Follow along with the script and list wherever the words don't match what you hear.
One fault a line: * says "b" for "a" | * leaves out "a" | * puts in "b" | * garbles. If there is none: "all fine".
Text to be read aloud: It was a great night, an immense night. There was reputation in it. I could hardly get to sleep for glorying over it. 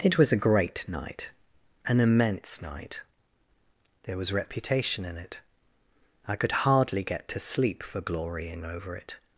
all fine